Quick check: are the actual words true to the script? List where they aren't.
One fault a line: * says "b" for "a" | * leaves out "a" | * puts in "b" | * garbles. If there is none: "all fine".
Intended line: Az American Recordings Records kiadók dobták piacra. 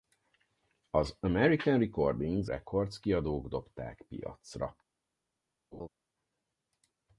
all fine